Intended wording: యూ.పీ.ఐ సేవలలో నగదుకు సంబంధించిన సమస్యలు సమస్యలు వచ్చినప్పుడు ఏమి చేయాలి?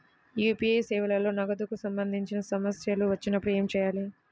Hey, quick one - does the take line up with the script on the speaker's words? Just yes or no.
no